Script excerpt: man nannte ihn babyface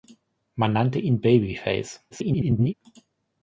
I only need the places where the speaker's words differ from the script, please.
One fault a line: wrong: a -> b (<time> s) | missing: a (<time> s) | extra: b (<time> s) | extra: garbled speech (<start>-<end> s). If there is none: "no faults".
extra: garbled speech (2.1-2.7 s)